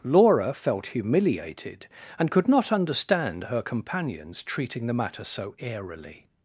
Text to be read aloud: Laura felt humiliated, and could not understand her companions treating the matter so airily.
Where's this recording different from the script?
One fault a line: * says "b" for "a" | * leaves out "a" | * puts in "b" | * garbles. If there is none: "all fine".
all fine